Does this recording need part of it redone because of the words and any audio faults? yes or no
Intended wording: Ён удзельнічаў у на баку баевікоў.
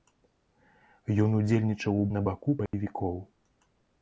yes